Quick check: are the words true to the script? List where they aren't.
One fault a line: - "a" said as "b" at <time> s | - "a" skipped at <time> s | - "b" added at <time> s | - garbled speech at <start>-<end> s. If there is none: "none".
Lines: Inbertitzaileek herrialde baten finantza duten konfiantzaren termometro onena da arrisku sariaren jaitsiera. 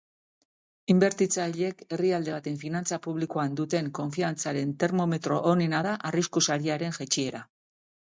- "publikoan" added at 3.1 s